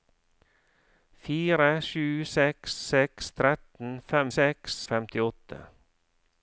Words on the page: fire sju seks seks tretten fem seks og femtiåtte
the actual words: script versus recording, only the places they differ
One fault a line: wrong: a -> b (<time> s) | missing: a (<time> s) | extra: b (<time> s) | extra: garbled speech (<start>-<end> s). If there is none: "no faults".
no faults